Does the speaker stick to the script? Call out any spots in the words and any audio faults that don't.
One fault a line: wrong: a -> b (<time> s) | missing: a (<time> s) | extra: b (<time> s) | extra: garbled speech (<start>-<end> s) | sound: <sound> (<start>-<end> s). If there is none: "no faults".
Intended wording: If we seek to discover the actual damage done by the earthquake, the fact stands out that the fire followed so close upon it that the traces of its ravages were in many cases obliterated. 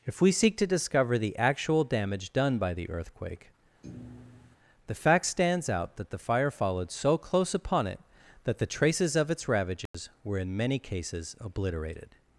sound: thud (3.8-4.6 s)
sound: dropout (9.9-9.9 s)